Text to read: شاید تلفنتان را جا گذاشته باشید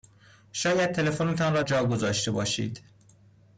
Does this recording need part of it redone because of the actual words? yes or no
no